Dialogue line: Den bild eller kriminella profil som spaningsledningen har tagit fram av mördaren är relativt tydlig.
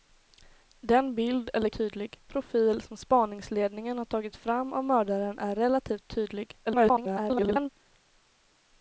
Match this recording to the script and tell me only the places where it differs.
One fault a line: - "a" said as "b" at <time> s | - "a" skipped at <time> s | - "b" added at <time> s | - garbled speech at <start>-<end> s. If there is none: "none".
- "kriminella" said as "tydlig" at 1.7 s
- garbled speech at 6.7-7.7 s